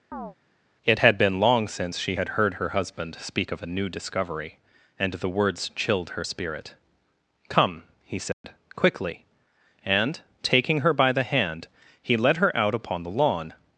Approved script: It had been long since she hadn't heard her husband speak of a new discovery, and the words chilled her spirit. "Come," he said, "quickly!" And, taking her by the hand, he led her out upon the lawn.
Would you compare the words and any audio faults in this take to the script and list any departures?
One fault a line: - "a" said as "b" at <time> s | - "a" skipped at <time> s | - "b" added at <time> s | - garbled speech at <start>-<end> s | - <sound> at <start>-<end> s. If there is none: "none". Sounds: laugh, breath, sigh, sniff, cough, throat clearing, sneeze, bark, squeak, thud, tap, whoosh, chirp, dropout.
- chirp at 0.1-0.3 s
- "hadn't" said as "had" at 2.1 s
- dropout at 8.3-8.4 s